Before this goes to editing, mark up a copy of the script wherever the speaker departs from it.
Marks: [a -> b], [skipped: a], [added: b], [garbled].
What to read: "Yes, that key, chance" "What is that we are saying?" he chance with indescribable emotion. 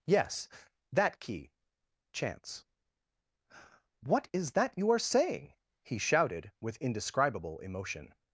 "Yes, that key, chance" "What is that [we -> you] are saying?" he [chance -> shouted] with indescribable emotion.